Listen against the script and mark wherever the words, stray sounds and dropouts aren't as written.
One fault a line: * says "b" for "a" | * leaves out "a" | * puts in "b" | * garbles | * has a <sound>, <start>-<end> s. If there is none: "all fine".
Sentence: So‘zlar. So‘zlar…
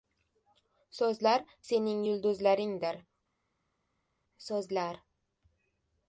* puts in "sening yulduzlaringdir"